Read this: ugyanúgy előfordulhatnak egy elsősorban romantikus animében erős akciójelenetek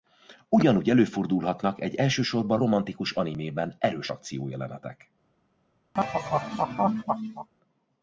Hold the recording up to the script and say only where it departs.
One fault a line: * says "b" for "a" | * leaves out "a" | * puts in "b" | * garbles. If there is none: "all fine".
all fine